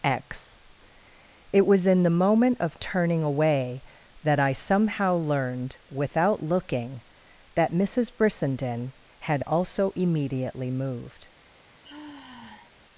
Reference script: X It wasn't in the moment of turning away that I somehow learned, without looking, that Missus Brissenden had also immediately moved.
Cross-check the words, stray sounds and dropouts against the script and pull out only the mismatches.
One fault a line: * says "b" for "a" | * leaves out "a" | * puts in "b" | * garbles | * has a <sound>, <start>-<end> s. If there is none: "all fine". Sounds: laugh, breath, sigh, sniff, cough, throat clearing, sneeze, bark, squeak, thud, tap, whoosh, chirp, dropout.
* says "was" for "wasn't"
* has a sigh, 11.8-12.7 s